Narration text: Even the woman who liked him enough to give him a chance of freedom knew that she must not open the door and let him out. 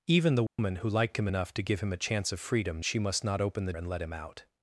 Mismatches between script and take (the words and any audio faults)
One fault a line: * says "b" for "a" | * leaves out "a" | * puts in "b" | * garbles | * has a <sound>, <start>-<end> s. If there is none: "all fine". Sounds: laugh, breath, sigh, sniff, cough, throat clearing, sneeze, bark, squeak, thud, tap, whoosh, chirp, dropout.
* has a dropout, 0.5-0.6 s
* leaves out "knew that"
* leaves out "door"